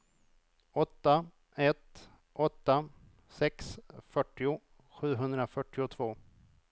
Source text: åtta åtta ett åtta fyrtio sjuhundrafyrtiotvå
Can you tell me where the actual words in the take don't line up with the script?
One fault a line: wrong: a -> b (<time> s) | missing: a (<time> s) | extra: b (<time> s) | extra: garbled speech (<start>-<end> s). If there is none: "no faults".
missing: åtta (1.2 s)
extra: sex (3.3 s)